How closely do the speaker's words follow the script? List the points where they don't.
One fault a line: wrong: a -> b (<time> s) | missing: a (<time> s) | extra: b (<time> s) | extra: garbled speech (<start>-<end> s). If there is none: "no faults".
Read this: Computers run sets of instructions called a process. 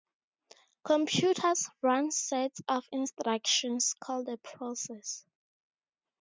no faults